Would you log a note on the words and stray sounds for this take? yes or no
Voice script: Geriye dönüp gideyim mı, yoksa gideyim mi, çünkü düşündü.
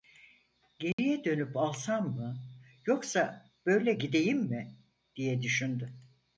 yes